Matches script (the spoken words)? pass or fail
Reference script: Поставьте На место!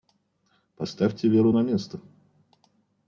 fail